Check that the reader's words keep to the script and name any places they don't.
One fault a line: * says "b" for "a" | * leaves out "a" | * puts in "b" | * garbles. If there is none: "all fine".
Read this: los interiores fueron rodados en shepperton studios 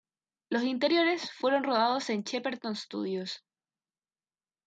all fine